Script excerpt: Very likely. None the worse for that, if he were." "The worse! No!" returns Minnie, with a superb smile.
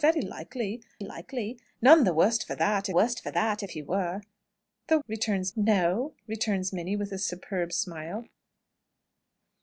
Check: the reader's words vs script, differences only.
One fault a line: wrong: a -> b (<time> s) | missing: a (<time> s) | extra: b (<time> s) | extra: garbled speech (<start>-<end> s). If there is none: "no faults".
extra: likely (1.0 s)
extra: worse for that (2.9 s)
wrong: worse -> returns (5.1 s)